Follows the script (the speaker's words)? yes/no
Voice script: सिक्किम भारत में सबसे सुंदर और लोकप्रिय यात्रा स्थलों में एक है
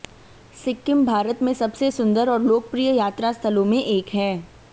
yes